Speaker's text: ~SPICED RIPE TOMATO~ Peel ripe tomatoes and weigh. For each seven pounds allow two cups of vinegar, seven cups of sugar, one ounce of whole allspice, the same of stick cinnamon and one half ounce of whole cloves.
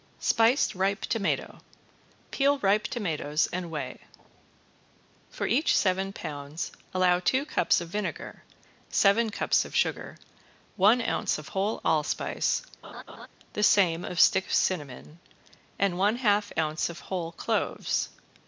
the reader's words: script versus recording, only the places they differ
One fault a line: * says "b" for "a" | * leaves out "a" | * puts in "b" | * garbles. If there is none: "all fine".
all fine